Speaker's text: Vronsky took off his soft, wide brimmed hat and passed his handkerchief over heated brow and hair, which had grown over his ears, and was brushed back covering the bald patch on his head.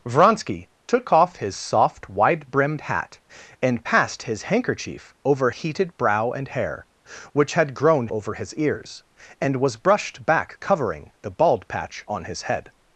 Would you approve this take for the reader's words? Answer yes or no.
yes